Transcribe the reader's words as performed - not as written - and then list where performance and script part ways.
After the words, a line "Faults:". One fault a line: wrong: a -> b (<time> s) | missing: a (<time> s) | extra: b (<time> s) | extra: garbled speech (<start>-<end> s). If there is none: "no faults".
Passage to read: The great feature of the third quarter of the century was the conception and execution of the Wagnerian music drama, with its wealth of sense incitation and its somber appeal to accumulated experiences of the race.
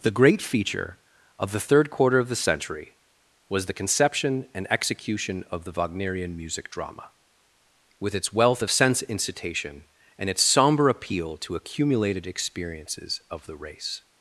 The great feature of the third quarter of the century was the conception and execution of the Wagnerian music drama, with its wealth of sense incitation and its somber appeal to accumulated experiences of the race.
Faults:
no faults